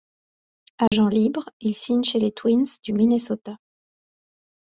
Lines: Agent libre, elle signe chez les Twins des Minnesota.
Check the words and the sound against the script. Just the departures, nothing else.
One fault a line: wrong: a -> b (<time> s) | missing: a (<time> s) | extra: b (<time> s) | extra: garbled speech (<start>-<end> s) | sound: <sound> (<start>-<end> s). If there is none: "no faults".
sound: dropout (0.9-0.9 s)
wrong: elle -> il (1.6 s)
wrong: des -> du (2.8 s)